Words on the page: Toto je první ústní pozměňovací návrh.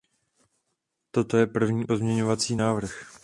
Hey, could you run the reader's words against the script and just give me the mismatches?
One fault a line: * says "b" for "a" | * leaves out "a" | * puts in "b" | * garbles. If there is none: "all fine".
* leaves out "ústní"